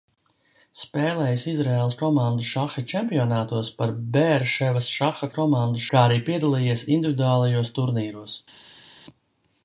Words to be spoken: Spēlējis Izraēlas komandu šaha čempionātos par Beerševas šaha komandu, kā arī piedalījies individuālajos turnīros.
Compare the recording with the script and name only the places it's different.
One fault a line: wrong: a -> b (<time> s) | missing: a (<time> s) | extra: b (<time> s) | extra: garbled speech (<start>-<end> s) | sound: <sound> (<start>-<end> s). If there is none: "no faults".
no faults